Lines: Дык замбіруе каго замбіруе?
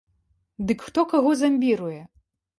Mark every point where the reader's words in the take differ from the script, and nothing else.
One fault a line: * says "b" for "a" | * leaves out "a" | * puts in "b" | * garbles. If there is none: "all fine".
* says "хто" for "замбіруе"